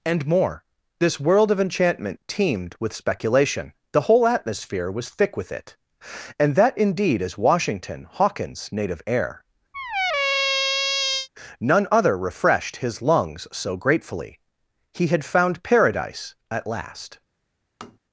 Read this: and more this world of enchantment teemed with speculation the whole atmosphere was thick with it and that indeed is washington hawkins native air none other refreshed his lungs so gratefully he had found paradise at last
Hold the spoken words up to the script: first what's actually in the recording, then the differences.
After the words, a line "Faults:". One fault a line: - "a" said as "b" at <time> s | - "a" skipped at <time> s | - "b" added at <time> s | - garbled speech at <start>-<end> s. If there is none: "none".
and more this world of enchantment teemed with speculation the whole atmosphere was thick with it and that indeed is washington hawkins native air none other refreshed his lungs so gratefully he had found paradise at last
Faults:
none